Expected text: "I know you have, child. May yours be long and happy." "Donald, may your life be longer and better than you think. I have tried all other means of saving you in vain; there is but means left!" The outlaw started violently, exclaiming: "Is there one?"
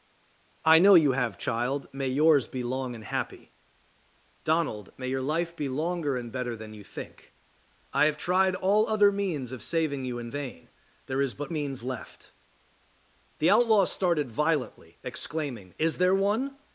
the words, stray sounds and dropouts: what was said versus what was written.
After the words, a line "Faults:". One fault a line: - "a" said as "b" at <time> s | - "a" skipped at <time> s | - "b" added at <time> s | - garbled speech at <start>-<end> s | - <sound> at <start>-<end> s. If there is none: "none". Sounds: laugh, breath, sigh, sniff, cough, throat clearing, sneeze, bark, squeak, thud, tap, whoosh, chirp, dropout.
"I know you have, child. May yours be long and happy." "Donald, may your life be longer and better than you think. I have tried all other means of saving you in vain; there is but means left!" The outlaw started violently, exclaiming: "Is there one?"
Faults:
none